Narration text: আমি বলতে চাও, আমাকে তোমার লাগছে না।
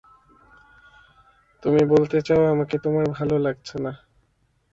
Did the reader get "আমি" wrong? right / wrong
wrong